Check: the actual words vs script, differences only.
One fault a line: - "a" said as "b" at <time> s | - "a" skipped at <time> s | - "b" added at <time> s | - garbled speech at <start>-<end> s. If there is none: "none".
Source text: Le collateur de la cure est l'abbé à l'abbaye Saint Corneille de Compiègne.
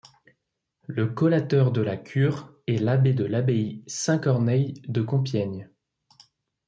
- "à" said as "de" at 3.1 s